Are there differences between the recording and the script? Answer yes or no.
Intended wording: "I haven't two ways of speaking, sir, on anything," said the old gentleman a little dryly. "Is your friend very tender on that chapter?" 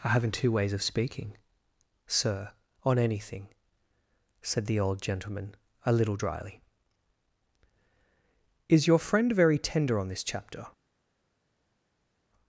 yes